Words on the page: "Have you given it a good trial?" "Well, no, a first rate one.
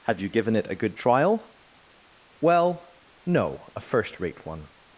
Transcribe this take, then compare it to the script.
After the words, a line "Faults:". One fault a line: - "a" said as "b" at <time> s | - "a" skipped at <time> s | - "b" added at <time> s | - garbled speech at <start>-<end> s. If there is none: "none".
"Have you given it a good trial?" "Well, no, a first rate one.
Faults:
none